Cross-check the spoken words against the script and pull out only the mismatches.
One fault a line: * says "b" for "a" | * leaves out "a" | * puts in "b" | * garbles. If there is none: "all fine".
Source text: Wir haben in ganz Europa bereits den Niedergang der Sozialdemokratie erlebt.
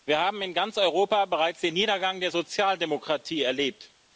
all fine